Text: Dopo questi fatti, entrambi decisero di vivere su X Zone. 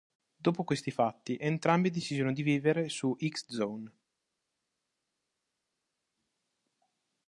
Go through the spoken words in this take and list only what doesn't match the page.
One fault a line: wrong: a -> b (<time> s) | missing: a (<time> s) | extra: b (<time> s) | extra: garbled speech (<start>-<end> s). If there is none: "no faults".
no faults